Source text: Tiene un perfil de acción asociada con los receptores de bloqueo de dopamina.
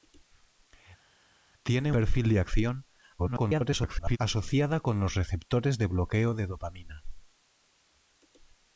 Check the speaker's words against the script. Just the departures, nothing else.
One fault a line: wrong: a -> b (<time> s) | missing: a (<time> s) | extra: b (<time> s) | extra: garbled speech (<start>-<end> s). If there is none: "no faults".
missing: un (1.9 s)
extra: garbled speech (3.2-4.2 s)